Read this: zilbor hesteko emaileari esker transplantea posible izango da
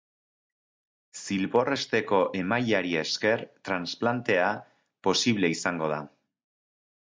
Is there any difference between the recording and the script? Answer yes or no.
no